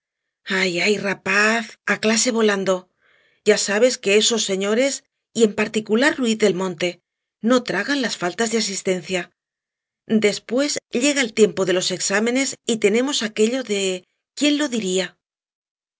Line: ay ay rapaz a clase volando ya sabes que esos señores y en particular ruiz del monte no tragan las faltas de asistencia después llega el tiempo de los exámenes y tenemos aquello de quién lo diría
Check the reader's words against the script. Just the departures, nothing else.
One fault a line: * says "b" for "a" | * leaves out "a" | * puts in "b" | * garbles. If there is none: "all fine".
all fine